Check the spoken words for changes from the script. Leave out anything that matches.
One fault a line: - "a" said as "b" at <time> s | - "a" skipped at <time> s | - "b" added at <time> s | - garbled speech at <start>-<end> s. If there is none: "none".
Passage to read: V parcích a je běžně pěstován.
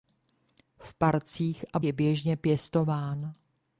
none